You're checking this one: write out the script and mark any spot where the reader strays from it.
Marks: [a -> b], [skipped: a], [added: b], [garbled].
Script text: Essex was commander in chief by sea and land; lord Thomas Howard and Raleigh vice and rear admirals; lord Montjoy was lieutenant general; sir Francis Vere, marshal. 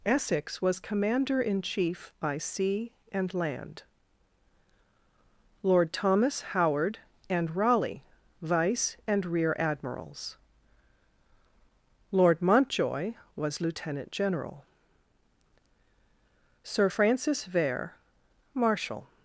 Essex was commander in chief by sea and land; lord Thomas Howard and Raleigh vice and rear admirals; lord Montjoy was lieutenant general; sir Francis Vere, marshal.